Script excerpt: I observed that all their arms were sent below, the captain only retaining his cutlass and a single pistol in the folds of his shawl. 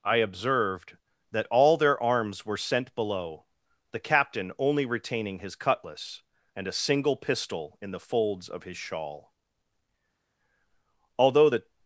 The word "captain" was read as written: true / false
true